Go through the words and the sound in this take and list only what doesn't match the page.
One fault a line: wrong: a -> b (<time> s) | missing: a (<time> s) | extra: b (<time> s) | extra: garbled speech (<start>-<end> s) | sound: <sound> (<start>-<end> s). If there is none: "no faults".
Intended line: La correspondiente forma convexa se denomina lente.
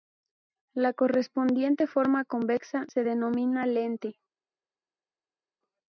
no faults